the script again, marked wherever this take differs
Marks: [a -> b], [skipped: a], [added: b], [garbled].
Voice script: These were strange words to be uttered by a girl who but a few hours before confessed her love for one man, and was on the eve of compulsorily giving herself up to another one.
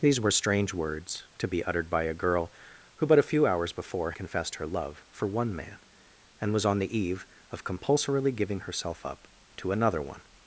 These were strange words to be uttered by a girl who but a few hours before confessed her love for one man, and was on the eve of compulsorily giving herself up to another one.